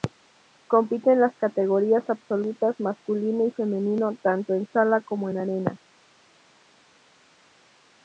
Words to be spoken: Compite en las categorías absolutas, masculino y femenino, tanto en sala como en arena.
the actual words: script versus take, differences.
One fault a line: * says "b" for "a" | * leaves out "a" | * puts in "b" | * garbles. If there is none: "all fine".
all fine